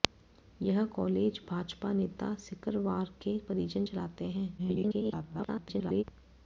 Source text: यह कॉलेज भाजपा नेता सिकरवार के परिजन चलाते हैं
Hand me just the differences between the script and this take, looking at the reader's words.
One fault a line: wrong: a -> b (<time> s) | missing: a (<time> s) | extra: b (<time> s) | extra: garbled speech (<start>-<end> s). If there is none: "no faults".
extra: garbled speech (4.6-6.0 s)